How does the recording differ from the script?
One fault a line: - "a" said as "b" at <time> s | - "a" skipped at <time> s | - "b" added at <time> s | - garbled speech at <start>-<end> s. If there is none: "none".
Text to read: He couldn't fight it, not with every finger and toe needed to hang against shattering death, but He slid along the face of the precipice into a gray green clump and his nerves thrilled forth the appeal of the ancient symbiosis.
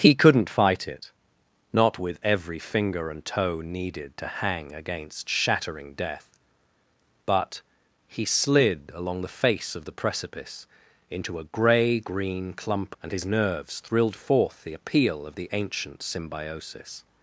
none